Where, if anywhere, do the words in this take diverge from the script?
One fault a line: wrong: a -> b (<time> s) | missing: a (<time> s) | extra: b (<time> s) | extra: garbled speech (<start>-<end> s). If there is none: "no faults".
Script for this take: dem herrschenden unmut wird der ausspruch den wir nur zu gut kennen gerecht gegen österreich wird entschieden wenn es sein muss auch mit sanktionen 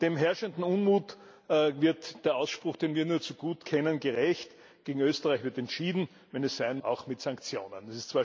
missing: muss (6.8 s)